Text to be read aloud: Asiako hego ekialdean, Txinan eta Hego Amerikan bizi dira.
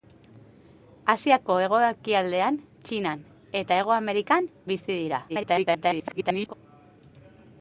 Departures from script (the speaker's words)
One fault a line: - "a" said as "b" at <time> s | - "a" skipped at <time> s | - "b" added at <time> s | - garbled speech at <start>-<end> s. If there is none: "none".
- garbled speech at 5.3-6.5 s